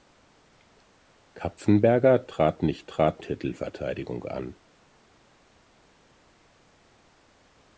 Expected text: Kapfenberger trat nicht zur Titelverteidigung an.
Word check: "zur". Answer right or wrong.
wrong